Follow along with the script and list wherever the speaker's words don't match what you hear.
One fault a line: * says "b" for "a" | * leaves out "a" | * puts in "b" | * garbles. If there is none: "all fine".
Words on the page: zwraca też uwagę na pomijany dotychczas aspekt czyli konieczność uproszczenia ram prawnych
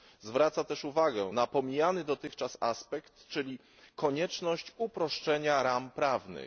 all fine